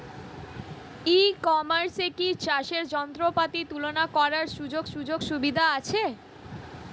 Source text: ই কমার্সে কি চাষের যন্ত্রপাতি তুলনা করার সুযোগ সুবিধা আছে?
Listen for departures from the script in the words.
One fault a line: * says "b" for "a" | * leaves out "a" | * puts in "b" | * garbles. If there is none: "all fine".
* puts in "সুযোগ"